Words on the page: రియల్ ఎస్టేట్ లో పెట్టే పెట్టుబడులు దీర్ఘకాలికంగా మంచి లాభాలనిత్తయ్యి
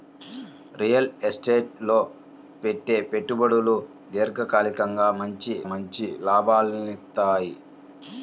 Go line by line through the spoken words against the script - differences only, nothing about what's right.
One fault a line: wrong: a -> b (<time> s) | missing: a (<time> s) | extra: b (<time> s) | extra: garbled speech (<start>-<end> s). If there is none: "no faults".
extra: మంచి (5.7 s)